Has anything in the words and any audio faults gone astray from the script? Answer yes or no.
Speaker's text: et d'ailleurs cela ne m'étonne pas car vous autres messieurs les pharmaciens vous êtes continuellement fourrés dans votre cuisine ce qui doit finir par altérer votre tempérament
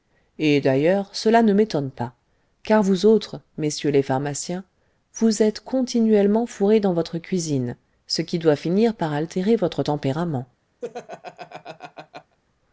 yes